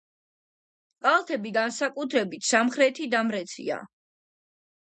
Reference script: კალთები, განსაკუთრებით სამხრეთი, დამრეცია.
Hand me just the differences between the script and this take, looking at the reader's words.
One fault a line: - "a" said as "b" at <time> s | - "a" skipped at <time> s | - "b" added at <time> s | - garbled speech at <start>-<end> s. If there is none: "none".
none